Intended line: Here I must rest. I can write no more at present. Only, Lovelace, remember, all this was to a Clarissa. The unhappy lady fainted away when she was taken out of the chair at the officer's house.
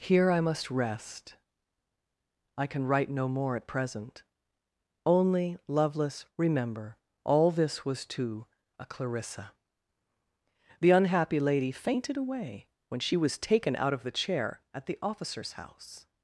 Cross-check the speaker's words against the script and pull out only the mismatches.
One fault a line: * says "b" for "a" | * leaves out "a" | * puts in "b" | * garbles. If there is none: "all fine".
all fine